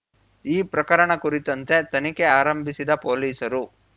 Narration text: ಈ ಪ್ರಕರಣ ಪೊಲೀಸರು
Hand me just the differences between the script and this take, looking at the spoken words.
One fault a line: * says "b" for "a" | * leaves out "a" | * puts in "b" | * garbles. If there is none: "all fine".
* puts in "ಕುರಿತಂತೆ ತನಿಖೆ ಆರಂಭಿಸಿದ"